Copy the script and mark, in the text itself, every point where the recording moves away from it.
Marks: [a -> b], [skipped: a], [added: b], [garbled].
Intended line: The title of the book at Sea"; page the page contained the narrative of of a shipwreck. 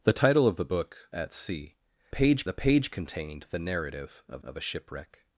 The title of the book at Sea"; page the page contained the narrative of of a shipwreck.